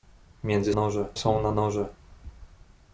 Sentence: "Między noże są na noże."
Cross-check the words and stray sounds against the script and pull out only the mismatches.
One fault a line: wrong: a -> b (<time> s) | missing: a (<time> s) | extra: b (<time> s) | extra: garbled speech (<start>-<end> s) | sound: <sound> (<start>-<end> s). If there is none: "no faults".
no faults